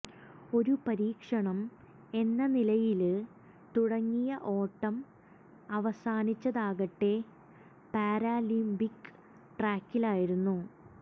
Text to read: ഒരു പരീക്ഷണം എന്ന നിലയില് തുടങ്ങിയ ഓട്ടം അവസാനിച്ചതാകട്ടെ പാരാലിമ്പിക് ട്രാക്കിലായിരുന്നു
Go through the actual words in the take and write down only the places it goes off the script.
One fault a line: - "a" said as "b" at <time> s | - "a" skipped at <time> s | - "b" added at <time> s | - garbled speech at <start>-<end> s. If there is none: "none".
none